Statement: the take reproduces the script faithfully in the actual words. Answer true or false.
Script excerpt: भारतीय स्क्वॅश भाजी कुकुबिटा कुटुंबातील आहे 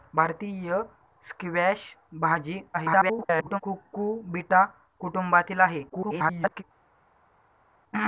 false